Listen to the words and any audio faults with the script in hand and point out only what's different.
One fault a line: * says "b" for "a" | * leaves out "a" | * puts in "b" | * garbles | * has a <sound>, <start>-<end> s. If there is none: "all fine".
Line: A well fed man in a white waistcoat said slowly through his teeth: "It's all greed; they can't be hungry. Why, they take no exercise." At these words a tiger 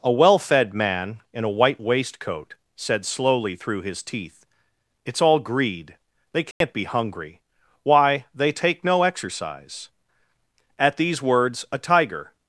* has a dropout, 6.5-6.6 s